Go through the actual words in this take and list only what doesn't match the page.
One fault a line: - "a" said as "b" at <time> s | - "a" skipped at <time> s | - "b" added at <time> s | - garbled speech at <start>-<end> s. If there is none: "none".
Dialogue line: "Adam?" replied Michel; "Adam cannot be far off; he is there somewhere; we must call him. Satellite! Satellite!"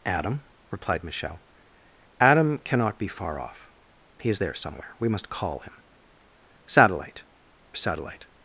none